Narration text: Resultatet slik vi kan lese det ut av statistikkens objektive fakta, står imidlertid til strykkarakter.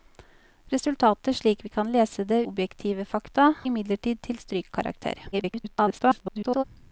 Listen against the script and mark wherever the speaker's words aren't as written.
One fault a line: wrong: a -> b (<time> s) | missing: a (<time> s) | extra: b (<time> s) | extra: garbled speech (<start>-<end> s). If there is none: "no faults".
missing: ut av statistikkens (2.4 s)
missing: står (3.5 s)
extra: garbled speech (5.3-6.6 s)